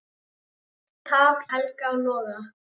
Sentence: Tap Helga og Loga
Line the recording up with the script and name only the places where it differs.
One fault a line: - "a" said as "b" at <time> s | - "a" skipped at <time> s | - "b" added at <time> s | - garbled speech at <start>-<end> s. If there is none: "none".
none